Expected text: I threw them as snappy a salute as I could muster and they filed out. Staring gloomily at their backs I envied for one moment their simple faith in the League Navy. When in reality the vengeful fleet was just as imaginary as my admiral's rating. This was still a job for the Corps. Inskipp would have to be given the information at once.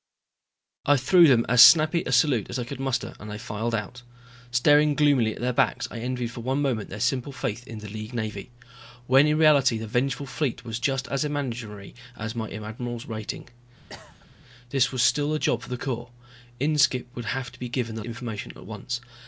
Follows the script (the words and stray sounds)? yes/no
no